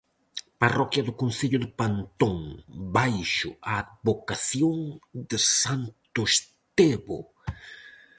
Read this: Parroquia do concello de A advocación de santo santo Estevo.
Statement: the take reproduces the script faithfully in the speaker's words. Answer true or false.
false